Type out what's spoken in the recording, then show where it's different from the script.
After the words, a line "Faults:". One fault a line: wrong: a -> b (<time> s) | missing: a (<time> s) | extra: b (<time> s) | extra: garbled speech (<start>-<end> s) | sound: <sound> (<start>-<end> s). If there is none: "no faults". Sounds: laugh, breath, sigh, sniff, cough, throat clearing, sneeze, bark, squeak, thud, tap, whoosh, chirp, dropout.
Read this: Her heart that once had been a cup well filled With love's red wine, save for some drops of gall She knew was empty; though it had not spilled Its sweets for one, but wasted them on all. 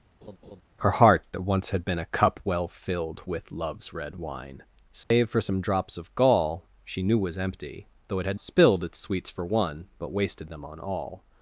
Her heart that once had been a cup well filled With love's red wine, save for some drops of gall She knew was empty; though it had spilled Its sweets for one, but wasted them on all.
Faults:
sound: laugh (0.2-0.6 s)
sound: dropout (5.0-5.1 s)
missing: not (8.4 s)